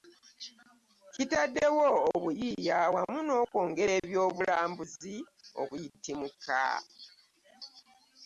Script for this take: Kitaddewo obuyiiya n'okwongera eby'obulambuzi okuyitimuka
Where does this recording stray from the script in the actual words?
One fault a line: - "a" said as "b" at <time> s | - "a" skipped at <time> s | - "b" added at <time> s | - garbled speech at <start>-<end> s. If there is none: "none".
- "wamu" added at 2.9 s